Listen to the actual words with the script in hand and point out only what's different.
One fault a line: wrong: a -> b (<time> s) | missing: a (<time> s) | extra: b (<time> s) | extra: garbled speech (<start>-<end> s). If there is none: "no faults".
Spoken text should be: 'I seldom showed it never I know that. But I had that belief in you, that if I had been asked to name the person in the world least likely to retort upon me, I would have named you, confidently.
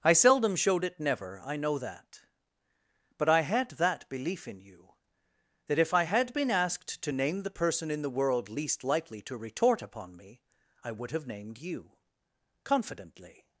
no faults